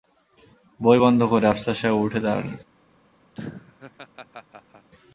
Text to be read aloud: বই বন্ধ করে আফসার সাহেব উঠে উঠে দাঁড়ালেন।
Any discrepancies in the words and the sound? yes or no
yes